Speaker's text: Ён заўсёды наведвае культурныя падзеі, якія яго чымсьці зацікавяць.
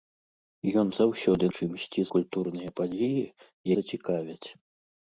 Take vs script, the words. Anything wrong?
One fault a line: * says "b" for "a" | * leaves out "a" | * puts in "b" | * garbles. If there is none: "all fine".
* says "чымсьці" for "наведвае"
* leaves out "якія яго чымсьці"